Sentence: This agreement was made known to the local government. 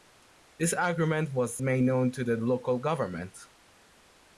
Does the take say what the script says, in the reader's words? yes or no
yes